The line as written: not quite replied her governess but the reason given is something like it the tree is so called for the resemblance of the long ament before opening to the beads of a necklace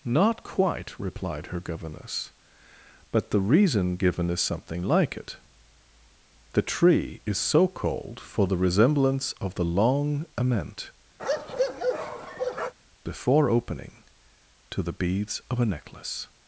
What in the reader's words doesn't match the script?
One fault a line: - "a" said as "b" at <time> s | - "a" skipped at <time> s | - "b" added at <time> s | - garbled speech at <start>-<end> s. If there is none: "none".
none